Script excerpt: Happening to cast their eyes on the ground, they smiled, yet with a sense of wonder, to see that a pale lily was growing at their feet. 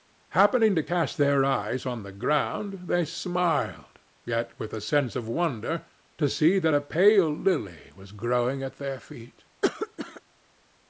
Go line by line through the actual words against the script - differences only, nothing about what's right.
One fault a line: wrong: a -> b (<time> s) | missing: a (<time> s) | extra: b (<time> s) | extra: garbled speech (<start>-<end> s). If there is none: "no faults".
no faults